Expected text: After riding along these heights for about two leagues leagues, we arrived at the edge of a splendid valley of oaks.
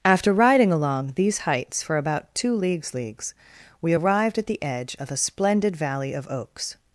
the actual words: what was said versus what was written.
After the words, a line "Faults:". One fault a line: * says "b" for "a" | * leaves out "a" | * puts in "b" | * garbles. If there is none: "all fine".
After riding along these heights for about two leagues leagues, we arrived at the edge of a splendid valley of oaks.
Faults:
all fine